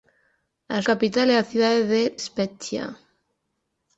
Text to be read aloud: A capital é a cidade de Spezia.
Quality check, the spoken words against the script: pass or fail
pass